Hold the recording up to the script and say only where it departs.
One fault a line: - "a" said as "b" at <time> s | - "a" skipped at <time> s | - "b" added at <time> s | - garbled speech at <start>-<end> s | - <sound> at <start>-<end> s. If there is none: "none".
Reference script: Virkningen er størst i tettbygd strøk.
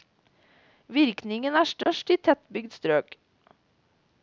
- dropout at 1.8-1.9 s